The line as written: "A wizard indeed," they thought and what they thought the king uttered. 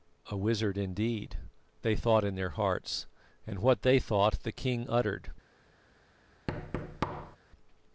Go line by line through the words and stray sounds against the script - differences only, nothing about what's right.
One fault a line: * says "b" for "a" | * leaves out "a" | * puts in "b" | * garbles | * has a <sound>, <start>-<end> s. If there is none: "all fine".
* puts in "in their hearts"
* has a thud, 6.5-7.4 s